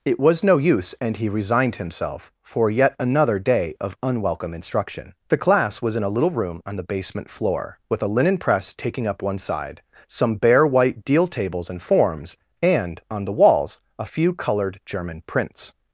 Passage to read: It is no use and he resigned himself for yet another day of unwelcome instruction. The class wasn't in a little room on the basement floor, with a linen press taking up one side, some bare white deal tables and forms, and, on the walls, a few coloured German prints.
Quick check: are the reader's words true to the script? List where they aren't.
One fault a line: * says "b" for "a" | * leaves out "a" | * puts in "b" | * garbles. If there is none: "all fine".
* says "was" for "is"
* says "was" for "wasn't"